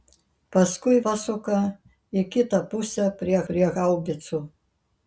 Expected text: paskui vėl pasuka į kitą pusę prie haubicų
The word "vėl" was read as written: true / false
false